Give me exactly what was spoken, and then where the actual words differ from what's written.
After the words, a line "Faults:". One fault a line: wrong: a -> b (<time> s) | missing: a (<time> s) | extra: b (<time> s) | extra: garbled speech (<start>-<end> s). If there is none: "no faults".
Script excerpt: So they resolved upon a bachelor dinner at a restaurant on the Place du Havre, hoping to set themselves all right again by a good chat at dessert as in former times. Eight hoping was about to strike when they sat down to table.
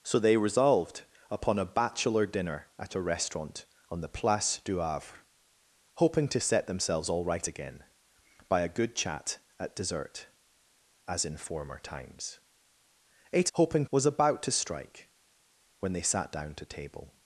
So they resolved upon a bachelor dinner at a restaurant on the Place du Havre, hoping to set themselves all right again by a good chat at dessert as in former times. Eight hoping was about to strike when they sat down to table.
Faults:
no faults